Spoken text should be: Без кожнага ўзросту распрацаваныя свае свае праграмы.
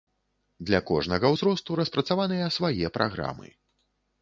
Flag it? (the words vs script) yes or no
yes